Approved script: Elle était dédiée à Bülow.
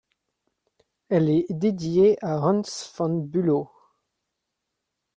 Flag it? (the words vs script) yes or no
yes